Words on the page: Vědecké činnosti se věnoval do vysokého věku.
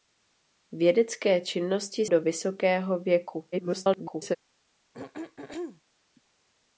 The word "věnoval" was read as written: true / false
false